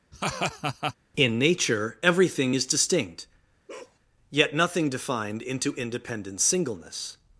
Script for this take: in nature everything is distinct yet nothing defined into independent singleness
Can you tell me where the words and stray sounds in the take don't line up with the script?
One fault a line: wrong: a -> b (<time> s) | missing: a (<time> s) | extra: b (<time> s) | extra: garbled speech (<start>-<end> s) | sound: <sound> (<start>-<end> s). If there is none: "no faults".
sound: laugh (0.1-0.9 s)
sound: bark (3.7-4.0 s)